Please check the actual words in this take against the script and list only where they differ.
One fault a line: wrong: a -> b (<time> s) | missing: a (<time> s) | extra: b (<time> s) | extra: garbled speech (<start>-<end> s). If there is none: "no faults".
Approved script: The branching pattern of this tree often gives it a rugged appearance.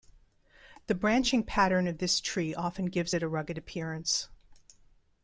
no faults